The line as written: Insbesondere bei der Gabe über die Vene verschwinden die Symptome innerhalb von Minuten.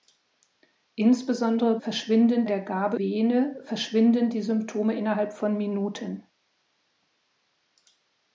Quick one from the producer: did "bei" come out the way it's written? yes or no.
no